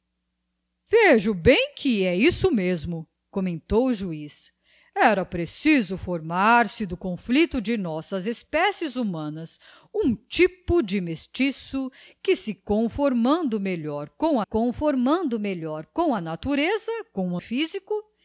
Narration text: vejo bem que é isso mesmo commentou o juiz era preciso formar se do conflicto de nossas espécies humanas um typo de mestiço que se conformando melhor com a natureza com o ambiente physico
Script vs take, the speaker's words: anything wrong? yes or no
yes